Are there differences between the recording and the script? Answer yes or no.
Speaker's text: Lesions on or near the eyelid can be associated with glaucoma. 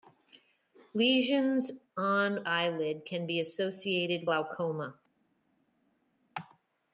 yes